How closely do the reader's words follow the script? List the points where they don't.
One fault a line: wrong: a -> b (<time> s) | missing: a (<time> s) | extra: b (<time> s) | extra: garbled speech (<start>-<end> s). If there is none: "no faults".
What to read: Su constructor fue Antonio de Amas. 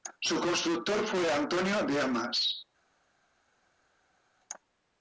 no faults